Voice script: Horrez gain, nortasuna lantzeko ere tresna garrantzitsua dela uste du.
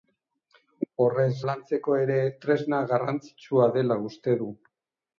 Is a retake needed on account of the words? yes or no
yes